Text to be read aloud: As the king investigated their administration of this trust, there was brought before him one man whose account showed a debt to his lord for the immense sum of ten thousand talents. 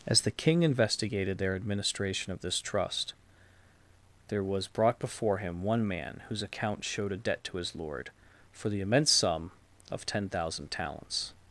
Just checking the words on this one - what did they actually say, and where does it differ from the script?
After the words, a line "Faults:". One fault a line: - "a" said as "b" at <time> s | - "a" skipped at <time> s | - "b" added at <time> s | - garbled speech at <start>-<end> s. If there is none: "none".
As the king investigated their administration of this trust, there was brought before him one man whose account showed a debt to his lord for the immense sum of ten thousand talents.
Faults:
none